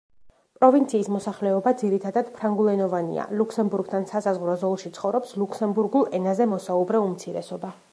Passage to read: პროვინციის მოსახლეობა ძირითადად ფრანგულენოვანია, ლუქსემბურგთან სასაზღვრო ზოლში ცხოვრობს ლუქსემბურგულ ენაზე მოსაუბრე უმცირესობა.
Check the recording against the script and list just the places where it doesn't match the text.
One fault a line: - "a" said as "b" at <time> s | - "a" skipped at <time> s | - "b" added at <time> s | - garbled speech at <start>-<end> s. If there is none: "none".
none